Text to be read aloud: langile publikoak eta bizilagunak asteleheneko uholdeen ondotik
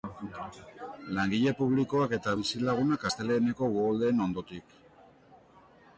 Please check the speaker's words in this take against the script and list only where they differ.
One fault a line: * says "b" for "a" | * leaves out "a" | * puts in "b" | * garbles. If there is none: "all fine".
all fine